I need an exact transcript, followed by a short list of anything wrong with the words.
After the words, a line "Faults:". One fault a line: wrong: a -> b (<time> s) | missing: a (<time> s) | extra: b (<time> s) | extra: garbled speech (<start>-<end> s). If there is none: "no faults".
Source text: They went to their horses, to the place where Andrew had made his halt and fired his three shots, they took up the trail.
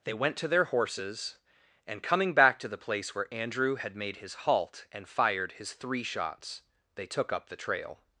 They went to their horses, and, coming back to the place where Andrew had made his halt and fired his three shots, they took up the trail.
Faults:
extra: and coming back (1.9 s)